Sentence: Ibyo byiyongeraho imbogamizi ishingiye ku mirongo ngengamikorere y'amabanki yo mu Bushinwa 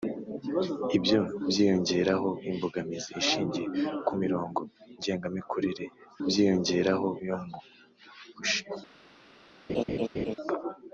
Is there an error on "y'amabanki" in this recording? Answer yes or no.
yes